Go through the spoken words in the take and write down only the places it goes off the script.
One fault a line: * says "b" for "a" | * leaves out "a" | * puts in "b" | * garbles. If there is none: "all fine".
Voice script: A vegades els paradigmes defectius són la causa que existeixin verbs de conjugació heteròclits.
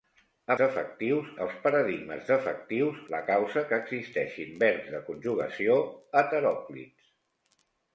* says "defectius" for "vegades"
* leaves out "són"